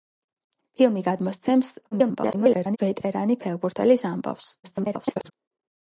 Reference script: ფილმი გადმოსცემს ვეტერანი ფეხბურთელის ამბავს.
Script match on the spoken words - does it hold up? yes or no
no